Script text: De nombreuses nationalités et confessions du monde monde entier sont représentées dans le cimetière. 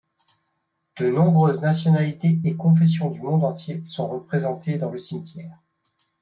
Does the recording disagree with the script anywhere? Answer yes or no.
yes